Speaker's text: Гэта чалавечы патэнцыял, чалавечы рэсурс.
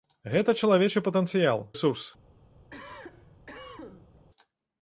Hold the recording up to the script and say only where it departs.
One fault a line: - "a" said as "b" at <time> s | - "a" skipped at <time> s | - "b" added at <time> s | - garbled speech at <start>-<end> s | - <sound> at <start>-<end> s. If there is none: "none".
- "чалавечы" skipped at 1.6 s
- cough at 2.7-4.3 s